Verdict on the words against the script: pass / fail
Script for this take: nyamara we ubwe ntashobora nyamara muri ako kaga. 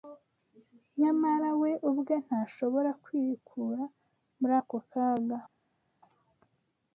fail